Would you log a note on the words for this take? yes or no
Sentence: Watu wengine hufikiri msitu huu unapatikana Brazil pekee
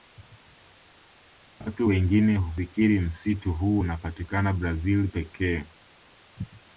no